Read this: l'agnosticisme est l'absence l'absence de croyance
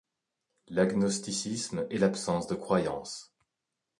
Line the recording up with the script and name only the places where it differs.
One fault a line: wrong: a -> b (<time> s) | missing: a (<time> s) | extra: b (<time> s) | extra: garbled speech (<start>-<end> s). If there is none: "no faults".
missing: l'absence (2.5 s)